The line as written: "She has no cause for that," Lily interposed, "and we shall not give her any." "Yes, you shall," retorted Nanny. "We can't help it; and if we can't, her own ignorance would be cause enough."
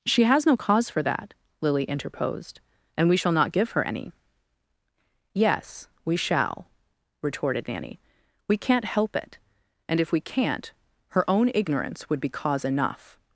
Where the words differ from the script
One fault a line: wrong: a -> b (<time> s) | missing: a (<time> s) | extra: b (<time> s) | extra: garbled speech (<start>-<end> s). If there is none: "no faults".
wrong: you -> we (6.0 s)